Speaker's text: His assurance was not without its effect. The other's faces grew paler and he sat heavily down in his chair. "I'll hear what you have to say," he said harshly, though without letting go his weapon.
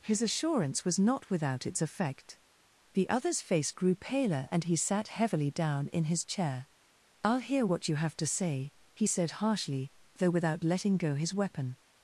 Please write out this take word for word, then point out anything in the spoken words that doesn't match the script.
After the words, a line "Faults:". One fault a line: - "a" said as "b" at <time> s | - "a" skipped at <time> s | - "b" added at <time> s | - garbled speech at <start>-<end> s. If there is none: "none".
His assurance was not without its effect. The other's face grew paler and he sat heavily down in his chair. "I'll hear what you have to say," he said harshly, though without letting go his weapon.
Faults:
- "faces" said as "face" at 3.4 s